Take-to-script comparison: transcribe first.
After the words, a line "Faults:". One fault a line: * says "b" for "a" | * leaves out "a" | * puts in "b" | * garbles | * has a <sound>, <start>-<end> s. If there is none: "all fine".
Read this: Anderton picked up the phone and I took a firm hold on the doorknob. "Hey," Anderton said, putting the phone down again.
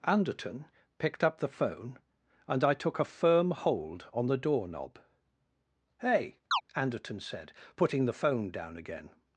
Anderton picked up the phone and I took a firm hold on the doorknob. "Hey," Anderton said, putting the phone down again.
Faults:
* has a chirp, 6.5-6.6 s